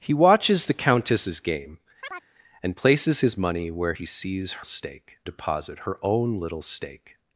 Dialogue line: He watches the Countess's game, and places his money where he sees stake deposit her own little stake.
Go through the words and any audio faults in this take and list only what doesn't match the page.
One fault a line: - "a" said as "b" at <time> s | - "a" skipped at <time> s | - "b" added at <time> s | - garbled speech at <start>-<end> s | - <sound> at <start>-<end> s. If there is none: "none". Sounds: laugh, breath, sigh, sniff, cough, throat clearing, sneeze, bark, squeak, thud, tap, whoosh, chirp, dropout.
- chirp at 2.0-2.3 s